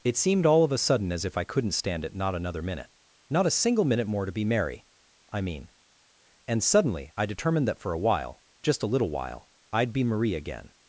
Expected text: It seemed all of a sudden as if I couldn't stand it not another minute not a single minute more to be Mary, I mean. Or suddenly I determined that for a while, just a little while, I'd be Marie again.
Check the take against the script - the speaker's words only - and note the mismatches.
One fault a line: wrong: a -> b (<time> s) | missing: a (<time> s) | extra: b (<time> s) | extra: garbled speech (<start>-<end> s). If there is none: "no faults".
wrong: Or -> And (6.5 s)